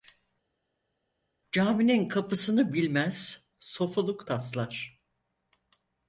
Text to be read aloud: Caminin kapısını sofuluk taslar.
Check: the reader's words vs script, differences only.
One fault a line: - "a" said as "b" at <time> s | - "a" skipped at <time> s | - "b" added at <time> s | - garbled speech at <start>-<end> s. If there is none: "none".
- "bilmez" added at 2.7 s